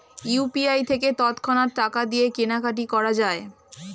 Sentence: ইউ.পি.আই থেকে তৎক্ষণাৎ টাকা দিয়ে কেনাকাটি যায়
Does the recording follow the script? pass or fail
fail